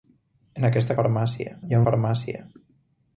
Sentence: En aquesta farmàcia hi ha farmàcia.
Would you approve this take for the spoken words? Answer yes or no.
yes